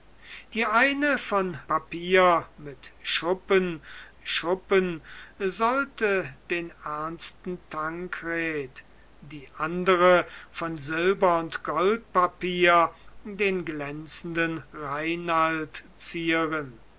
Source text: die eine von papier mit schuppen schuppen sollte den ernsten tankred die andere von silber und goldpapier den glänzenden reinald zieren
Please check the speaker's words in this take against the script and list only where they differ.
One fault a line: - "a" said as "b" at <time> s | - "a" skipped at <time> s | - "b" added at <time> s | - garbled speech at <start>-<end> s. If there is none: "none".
none